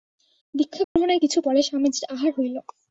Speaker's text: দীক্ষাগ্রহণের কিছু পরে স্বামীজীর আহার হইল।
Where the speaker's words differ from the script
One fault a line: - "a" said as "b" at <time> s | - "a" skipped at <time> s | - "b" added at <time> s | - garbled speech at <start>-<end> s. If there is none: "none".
none